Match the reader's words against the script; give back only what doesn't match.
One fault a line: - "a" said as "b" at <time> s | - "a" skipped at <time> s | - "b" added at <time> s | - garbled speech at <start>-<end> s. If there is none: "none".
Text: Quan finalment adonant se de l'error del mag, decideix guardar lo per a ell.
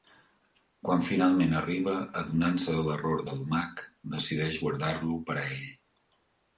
- "arriba" added at 1.6 s